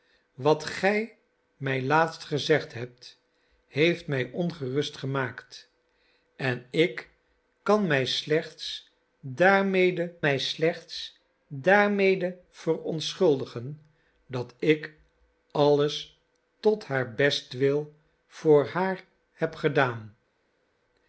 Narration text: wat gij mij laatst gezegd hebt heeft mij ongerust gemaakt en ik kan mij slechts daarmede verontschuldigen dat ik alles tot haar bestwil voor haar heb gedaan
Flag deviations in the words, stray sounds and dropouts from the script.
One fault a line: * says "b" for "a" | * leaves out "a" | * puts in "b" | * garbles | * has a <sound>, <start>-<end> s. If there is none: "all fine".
* puts in "mij slechts daarmede"